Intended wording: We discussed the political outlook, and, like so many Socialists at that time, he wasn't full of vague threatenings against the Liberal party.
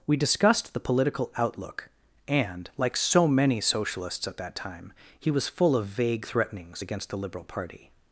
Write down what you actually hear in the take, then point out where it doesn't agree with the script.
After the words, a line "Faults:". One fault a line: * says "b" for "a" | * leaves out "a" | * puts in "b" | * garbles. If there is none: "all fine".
We discussed the political outlook, and, like so many Socialists at that time, he was full of vague threatenings against the Liberal party.
Faults:
* says "was" for "wasn't"